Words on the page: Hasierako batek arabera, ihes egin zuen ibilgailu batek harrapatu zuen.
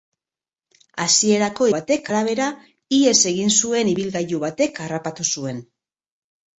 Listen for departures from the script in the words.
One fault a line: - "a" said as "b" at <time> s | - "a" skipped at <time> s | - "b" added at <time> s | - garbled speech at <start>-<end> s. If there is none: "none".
none